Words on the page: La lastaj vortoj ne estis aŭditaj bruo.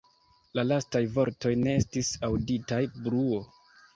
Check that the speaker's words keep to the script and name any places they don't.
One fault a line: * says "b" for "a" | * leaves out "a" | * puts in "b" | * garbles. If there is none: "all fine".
all fine